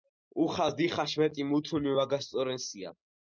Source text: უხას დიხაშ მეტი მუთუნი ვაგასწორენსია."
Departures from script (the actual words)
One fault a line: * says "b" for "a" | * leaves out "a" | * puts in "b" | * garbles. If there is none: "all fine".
all fine